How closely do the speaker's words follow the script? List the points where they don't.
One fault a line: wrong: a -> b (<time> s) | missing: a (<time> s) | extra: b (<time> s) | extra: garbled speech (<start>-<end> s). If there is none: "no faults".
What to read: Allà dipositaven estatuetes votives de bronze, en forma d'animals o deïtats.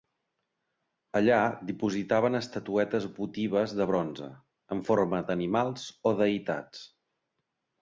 no faults